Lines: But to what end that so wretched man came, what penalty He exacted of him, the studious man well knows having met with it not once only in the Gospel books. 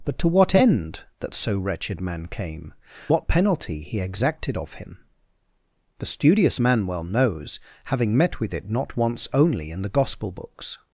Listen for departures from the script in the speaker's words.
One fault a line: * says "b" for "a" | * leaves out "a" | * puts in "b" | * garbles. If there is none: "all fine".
all fine